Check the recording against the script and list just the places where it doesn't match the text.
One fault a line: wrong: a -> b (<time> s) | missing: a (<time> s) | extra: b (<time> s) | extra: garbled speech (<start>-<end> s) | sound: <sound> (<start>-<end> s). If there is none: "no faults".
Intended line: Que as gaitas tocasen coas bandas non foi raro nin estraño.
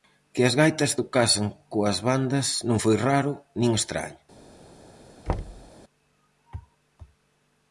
sound: thud (5.3-5.7 s)